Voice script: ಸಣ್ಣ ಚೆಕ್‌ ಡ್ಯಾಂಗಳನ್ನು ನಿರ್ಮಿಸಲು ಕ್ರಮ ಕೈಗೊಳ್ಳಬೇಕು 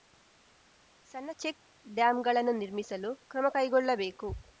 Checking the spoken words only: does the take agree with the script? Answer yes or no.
yes